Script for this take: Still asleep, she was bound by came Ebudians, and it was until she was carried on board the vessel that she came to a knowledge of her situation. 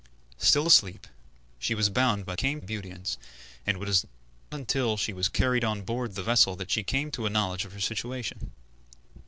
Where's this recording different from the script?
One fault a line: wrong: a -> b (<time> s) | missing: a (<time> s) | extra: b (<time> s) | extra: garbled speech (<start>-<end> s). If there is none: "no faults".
no faults